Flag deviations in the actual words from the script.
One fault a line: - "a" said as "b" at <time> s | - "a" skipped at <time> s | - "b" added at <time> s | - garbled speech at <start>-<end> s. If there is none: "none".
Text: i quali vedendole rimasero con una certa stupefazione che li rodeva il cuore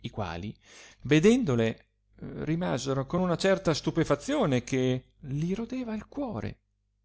none